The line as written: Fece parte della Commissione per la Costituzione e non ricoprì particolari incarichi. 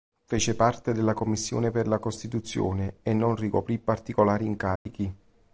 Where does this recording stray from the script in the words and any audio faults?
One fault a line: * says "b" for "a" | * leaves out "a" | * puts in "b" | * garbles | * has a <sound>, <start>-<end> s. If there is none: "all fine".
* has a dropout, 4.8-4.9 s